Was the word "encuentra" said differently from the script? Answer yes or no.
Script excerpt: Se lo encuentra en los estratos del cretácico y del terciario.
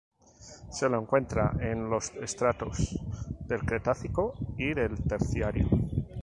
no